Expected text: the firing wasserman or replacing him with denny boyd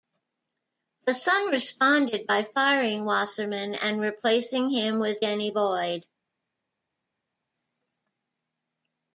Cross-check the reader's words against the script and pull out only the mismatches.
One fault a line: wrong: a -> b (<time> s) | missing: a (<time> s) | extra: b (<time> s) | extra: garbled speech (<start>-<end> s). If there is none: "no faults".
extra: sun responded by (1.1 s)
wrong: or -> and (3.8 s)